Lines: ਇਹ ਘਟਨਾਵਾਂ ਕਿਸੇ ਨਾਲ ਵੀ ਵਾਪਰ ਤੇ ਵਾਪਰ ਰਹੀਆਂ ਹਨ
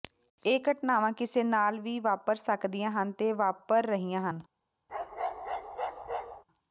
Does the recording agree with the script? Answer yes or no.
no